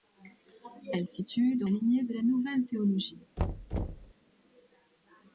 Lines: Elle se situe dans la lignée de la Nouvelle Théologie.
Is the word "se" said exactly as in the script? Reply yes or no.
no